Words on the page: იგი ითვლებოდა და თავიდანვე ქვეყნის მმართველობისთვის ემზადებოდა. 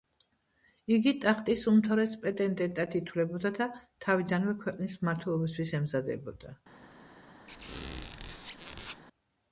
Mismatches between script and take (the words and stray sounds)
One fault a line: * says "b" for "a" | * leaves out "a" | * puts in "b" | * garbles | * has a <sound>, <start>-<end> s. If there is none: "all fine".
* puts in "ტახტის უმთავრეს პრეტენდენტად"
* has a squeak, 7.5-9.0 s